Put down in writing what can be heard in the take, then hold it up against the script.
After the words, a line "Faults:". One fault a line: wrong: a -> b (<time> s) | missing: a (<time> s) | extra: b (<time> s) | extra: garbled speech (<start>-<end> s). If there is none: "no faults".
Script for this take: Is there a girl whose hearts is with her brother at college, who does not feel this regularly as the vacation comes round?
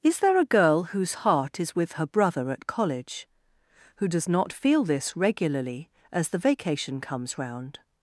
Is there a girl whose heart is with her brother at college, who does not feel this regularly as the vacation comes round?
Faults:
wrong: hearts -> heart (1.3 s)